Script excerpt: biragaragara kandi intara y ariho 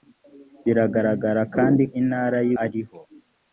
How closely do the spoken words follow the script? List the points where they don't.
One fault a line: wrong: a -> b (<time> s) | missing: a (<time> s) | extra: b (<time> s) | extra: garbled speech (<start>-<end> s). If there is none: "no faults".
no faults